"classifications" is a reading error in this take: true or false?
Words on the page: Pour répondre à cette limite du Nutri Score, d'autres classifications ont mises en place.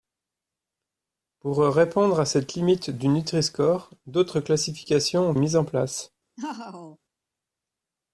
false